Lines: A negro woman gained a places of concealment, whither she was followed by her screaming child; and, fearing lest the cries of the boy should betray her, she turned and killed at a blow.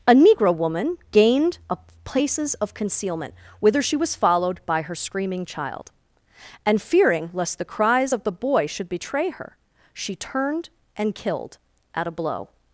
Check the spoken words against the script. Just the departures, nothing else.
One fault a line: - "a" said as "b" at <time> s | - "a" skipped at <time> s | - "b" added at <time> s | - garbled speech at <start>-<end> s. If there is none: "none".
none